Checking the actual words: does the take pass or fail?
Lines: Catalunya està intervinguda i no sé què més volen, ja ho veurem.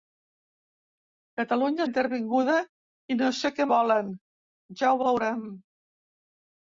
fail